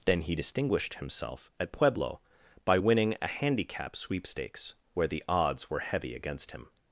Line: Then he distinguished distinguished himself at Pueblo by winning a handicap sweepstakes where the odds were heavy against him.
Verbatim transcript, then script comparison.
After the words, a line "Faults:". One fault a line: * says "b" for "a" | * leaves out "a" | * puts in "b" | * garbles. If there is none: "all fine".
Then he distinguished himself at Pueblo by winning a handicap sweepstakes where the odds were heavy against him.
Faults:
* leaves out "distinguished"